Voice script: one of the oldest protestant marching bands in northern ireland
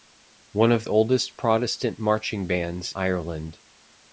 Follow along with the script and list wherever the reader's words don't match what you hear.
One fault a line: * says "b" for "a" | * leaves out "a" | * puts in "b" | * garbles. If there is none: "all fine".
* leaves out "the"
* leaves out "in northern"